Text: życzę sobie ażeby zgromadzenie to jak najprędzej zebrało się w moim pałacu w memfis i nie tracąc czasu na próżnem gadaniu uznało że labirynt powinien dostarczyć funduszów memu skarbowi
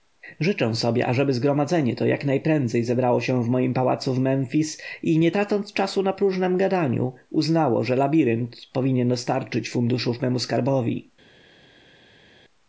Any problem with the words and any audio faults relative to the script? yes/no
no